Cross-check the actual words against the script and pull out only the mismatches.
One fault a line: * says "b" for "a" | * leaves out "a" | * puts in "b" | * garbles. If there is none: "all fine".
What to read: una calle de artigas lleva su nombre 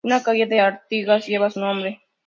all fine